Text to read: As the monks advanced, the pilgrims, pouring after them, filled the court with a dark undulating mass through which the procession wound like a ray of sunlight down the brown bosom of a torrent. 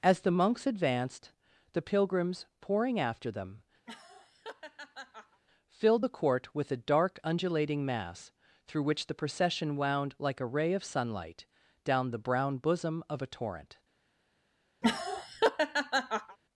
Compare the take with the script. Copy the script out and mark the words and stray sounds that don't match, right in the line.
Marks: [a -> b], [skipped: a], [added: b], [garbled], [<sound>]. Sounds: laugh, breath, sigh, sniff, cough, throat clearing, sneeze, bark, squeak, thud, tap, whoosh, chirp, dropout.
As the monks advanced, the pilgrims, pouring after them, [laugh] filled the court with a dark undulating mass through which the procession wound like a ray of sunlight down the brown bosom of a torrent. [laugh]